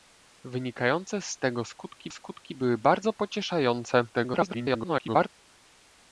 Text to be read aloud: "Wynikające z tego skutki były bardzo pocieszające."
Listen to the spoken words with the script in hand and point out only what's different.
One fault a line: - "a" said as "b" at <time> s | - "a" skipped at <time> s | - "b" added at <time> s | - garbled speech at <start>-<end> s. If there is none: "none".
- "skutki" added at 2.1 s
- garbled speech at 4.1-5.3 s